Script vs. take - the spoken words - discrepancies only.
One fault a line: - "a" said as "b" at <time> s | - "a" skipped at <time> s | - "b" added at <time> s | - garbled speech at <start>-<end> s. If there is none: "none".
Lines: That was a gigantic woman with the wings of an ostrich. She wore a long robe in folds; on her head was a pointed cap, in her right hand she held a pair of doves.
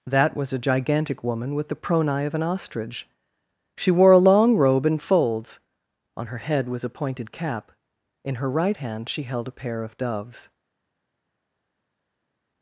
- "wings" said as "pronai" at 1.8 s